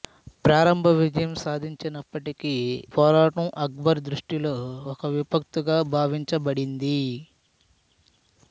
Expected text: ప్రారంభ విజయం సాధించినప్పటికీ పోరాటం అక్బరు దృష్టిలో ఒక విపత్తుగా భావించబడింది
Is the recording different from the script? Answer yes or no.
no